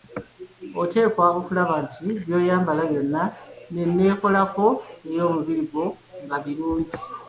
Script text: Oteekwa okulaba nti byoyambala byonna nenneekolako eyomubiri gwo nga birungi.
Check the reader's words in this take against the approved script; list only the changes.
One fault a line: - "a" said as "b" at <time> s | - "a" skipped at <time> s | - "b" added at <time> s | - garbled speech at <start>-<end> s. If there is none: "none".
none